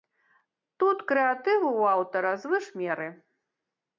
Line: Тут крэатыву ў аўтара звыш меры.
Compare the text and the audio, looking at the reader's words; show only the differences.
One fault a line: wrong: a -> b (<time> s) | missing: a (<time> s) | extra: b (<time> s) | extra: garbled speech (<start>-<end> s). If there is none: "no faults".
no faults